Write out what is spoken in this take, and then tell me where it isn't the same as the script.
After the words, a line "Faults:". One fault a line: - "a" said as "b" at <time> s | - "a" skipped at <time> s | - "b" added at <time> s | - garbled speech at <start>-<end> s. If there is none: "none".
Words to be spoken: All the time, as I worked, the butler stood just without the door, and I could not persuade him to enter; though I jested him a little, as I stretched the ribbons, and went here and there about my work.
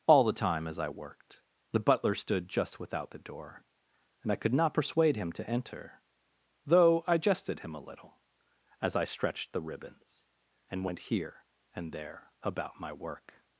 All the time, as I worked, the butler stood just without the door, and I could not persuade him to enter; though I jested him a little, as I stretched the ribbons, and went here and there about my work.
Faults:
none